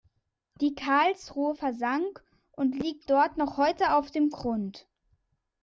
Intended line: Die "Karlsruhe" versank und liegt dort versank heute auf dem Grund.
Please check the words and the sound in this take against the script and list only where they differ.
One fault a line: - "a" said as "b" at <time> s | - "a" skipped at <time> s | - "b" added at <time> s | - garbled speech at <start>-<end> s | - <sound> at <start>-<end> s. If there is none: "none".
- "versank" said as "noch" at 3.4 s